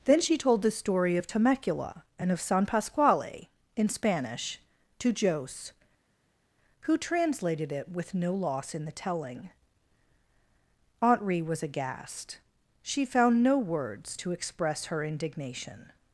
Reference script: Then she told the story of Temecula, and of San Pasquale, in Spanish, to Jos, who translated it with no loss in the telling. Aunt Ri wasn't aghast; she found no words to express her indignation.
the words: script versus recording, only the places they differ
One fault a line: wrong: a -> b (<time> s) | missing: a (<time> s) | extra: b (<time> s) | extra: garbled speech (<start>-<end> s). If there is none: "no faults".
wrong: wasn't -> was (11.4 s)